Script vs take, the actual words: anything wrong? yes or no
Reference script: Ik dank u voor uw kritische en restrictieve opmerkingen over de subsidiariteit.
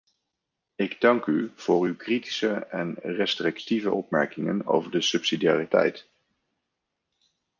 no